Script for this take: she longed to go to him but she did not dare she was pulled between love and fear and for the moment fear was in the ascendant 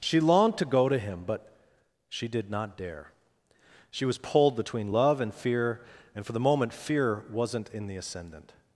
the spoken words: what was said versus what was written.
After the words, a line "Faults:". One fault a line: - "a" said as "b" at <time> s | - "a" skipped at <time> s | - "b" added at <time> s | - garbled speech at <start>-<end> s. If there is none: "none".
she longed to go to him but she did not dare she was pulled between love and fear and for the moment fear wasn't in the ascendant
Faults:
- "was" said as "wasn't" at 7.3 s